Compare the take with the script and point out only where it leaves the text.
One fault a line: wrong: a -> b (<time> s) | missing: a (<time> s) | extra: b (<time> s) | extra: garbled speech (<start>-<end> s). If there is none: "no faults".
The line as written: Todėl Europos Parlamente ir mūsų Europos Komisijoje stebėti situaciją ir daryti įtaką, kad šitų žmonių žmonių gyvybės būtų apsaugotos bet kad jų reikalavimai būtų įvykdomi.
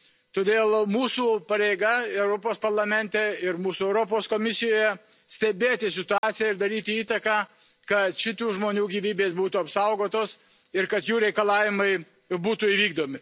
extra: mūsų pareiga (0.9 s)
missing: žmonių (8.8 s)
wrong: bet -> ir (10.7 s)